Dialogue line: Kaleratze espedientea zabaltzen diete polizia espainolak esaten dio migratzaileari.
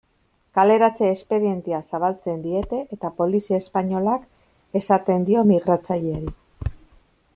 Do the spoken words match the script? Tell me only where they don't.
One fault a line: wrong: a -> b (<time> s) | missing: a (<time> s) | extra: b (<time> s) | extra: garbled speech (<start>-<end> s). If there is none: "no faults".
extra: eta (3.0 s)